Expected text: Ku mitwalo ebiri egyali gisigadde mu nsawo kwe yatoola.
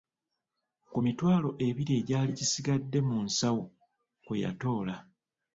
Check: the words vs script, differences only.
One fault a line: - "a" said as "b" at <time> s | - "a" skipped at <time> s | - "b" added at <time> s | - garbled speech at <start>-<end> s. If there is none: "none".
none